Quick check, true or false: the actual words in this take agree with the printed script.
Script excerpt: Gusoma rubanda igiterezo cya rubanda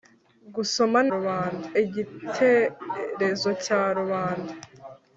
true